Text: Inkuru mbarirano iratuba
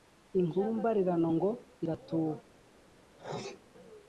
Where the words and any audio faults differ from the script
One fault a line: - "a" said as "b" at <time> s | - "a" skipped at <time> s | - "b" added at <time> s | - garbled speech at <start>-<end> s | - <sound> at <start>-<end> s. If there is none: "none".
- "ngo" added at 1.4 s
- sneeze at 3.2-3.6 s